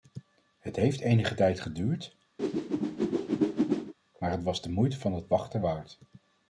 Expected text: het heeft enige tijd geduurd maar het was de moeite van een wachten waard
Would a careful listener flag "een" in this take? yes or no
yes